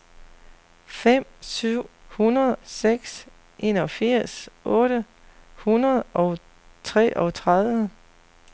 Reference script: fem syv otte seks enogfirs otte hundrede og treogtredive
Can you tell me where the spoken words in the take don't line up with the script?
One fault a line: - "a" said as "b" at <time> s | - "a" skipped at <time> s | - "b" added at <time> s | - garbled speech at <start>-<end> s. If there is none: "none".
- "otte" said as "hundrede" at 2.1 s